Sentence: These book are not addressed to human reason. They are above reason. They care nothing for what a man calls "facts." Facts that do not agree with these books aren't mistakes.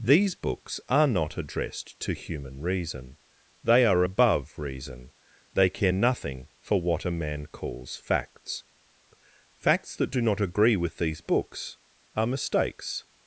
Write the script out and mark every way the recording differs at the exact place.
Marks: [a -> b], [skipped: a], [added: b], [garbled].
These [book -> books] are not addressed to human reason. They are above reason. They care nothing for what a man calls "facts." Facts that do not agree with these books [aren't -> are] mistakes.